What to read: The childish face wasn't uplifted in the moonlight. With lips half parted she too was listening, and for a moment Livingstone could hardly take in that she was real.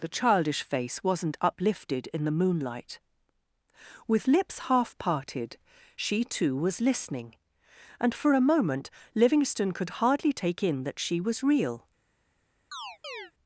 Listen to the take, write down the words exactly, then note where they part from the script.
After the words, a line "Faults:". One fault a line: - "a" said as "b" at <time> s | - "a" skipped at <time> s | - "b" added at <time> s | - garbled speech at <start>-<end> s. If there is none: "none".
The childish face wasn't uplifted in the moonlight. With lips half parted she too was listening, and for a moment Livingstone could hardly take in that she was real.
Faults:
none